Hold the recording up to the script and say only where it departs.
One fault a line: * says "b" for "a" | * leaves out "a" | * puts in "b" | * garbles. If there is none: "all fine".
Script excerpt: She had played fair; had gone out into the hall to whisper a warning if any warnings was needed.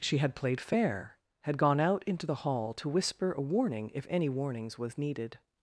all fine